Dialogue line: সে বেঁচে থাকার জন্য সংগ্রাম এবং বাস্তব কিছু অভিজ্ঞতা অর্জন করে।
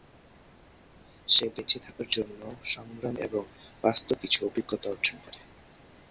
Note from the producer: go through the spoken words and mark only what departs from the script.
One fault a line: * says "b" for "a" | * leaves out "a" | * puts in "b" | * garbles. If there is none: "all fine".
all fine